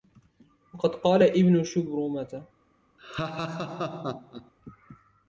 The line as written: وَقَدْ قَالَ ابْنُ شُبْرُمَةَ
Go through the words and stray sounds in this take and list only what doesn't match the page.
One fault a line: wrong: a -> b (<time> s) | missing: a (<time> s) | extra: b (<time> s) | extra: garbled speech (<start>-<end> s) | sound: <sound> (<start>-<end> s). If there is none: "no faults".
sound: laugh (3.0-4.5 s)